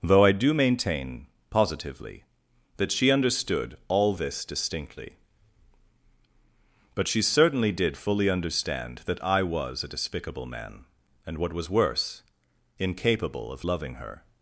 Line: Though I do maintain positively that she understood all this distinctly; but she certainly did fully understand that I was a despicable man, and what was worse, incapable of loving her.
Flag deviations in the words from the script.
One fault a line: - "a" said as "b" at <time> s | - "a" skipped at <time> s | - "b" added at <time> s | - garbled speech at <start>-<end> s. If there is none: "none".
none